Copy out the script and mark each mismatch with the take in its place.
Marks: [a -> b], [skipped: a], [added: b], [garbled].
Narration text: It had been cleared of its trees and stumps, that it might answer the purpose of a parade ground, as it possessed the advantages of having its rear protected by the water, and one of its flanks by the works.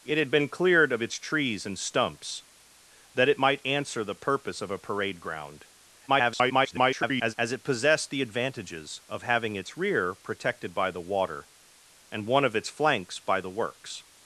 It had been cleared of its trees and stumps, that it might answer the purpose of a parade ground, [garbled] as it possessed the advantages of having its rear protected by the water, and one of its flanks by the works.